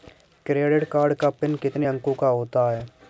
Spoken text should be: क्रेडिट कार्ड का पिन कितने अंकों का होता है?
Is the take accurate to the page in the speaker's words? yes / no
yes